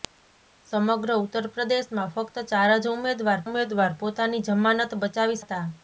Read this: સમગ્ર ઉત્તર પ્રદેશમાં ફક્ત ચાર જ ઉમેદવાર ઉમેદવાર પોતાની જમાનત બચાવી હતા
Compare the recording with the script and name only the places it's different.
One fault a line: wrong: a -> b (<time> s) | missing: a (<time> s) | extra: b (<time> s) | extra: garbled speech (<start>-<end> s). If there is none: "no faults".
no faults